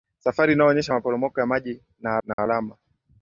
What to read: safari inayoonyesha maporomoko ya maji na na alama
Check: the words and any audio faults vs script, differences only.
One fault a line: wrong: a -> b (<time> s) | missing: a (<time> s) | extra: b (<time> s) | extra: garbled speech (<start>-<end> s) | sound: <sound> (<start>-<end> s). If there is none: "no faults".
sound: dropout (2.3-2.4 s)